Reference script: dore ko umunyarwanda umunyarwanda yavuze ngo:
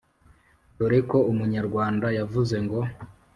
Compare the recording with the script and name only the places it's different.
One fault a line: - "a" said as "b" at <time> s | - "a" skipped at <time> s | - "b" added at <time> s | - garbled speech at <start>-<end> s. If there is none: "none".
- "umunyarwanda" skipped at 2.1 s